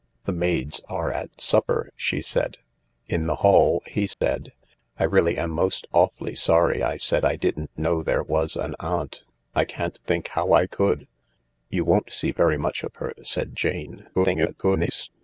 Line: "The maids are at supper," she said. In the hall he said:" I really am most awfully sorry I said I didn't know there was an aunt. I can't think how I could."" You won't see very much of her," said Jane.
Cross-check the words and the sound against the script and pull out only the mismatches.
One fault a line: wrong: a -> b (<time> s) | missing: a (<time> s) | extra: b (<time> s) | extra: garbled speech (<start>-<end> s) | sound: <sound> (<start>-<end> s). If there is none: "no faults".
sound: dropout (4.1-4.2 s)
extra: garbled speech (14.1-15.1 s)